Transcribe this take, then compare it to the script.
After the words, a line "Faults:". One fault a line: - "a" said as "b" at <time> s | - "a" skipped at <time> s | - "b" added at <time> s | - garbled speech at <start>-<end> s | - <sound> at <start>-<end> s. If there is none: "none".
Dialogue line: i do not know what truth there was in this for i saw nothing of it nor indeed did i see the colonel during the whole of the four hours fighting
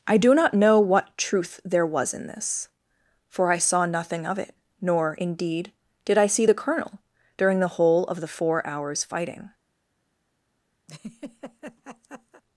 i do not know what truth there was in this for i saw nothing of it nor indeed did i see the colonel during the whole of the four hours fighting
Faults:
- laugh at 10.9-12.4 s